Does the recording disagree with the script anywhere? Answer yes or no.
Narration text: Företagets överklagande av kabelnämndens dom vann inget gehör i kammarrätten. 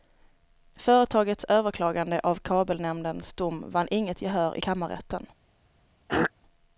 no